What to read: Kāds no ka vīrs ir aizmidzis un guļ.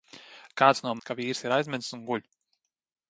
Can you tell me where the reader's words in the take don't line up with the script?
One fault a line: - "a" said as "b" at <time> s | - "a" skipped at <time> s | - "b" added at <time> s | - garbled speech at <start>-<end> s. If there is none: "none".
none